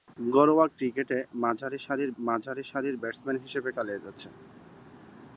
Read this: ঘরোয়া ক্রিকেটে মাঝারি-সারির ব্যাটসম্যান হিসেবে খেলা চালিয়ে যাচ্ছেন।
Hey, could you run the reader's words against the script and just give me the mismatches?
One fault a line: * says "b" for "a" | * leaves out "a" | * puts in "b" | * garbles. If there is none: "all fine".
* puts in "মাঝারি-সারির"
* leaves out "খেলা"